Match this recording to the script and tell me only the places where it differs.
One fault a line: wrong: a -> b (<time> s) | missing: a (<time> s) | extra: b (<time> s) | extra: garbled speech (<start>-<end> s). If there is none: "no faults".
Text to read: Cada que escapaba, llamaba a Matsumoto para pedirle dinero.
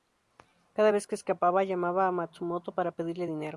extra: vez (0.9 s)